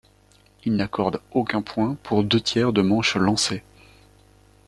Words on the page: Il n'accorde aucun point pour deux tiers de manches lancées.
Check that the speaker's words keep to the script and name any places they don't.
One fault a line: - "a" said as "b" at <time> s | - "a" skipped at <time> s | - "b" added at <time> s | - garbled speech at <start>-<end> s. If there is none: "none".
none